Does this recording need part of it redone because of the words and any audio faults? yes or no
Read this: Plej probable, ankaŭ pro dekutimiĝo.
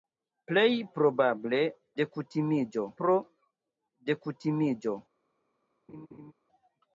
yes